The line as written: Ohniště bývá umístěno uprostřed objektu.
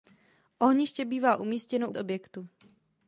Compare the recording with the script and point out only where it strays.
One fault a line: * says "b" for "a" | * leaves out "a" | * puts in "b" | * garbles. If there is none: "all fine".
* leaves out "uprostřed"